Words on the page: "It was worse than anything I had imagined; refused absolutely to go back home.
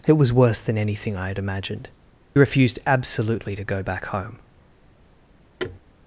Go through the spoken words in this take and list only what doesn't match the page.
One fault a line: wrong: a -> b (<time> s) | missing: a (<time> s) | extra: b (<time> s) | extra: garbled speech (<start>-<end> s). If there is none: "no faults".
no faults